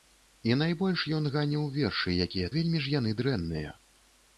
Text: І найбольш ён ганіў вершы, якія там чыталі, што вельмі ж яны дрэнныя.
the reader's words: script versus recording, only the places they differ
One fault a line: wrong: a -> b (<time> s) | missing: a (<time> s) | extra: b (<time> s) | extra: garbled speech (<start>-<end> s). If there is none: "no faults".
missing: там чыталі што (2.5 s)